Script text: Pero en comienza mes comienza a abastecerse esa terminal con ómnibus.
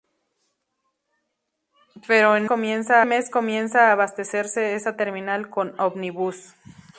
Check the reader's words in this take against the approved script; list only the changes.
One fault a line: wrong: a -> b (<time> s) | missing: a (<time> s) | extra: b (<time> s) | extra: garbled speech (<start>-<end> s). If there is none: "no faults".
no faults